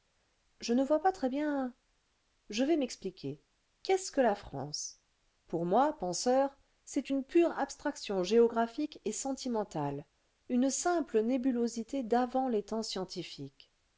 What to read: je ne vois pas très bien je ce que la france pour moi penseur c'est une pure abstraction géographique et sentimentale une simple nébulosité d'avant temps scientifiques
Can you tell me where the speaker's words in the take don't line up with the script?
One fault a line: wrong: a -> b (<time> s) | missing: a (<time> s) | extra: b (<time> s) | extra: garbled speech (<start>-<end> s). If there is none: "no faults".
extra: vais m'expliquer qu'est (2.6 s)
extra: les (12.5 s)